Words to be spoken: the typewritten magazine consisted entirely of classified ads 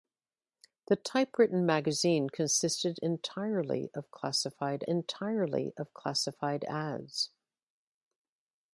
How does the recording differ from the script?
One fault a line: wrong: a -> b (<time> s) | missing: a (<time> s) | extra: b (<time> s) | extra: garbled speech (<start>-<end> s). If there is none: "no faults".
extra: entirely of classified (4.9 s)